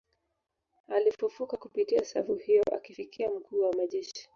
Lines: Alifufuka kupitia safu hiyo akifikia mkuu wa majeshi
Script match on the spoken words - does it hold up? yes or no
yes